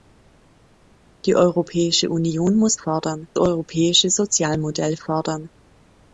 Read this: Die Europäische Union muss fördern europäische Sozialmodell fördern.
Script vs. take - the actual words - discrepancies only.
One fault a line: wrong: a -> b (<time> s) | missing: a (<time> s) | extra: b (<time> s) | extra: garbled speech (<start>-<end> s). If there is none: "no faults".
no faults